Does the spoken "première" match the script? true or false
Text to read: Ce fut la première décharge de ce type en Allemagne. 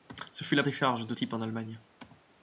false